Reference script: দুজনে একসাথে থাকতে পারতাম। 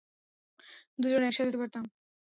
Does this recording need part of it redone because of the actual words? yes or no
yes